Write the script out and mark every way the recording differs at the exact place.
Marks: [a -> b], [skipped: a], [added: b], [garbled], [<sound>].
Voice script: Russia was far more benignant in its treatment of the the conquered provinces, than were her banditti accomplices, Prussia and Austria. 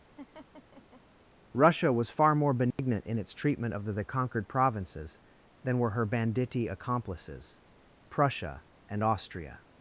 [laugh] Russia was far more benignant [dropout] in its treatment of the the conquered provinces, than were her banditti accomplices, Prussia and Austria.